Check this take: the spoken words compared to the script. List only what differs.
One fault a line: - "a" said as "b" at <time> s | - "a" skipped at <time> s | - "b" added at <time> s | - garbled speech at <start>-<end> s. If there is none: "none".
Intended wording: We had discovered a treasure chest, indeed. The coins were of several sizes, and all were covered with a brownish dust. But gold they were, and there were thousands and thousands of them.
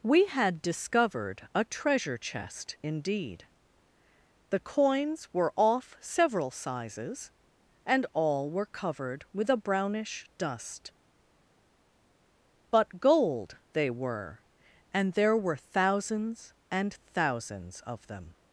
- "of" said as "off" at 5.6 s